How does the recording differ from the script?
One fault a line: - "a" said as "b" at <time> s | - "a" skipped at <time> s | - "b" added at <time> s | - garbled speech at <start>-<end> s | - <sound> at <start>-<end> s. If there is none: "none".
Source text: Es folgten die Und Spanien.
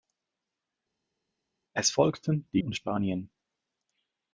none